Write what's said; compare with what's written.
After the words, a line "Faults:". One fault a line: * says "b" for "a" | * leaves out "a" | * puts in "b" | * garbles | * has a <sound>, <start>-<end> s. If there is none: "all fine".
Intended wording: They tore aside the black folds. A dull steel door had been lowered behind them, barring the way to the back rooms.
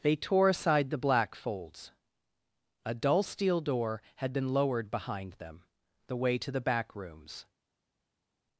They tore aside the black folds. A dull steel door had been lowered behind them, the way to the back rooms.
Faults:
* leaves out "barring"